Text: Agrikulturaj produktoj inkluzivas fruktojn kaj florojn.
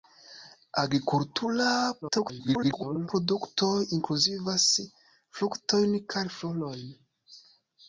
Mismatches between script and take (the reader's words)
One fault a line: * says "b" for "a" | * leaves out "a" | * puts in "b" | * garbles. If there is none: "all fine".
* garbles